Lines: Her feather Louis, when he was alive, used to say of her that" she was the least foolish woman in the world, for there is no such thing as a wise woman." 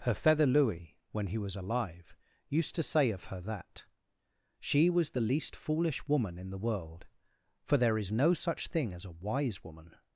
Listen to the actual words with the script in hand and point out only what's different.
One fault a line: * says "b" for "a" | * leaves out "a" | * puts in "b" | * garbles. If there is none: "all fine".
all fine